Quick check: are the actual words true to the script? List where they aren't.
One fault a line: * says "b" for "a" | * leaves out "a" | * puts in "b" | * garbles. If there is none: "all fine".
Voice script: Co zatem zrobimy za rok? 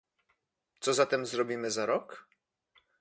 all fine